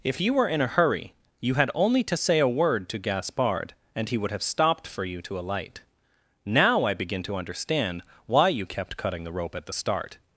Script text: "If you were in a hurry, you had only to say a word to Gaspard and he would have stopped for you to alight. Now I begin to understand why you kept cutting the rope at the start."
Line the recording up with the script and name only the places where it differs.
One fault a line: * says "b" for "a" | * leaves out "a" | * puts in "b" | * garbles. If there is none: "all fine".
all fine